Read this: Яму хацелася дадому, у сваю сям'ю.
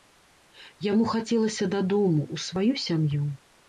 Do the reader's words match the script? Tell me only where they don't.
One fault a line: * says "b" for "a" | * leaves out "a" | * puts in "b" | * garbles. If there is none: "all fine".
all fine